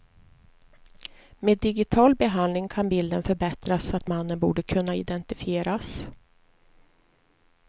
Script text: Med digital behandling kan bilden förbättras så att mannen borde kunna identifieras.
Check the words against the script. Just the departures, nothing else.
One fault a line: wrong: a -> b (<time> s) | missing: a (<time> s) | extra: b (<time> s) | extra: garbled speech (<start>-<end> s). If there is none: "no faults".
no faults